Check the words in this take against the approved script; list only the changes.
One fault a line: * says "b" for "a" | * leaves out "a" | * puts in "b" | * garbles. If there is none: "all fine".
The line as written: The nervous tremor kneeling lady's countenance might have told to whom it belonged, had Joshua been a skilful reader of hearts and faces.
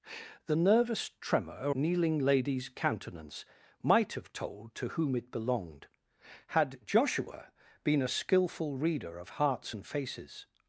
all fine